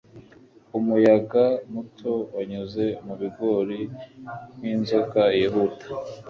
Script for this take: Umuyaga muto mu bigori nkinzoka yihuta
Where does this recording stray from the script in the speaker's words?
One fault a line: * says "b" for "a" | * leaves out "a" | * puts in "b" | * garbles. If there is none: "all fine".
* puts in "wanyuze"